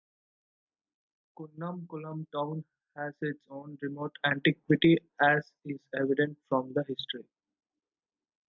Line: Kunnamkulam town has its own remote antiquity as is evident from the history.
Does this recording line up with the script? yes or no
yes